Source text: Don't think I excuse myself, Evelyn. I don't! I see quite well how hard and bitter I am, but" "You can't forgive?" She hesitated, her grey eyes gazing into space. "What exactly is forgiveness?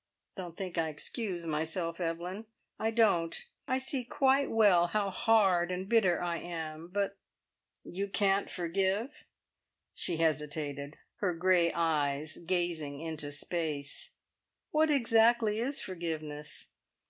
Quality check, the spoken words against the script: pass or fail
pass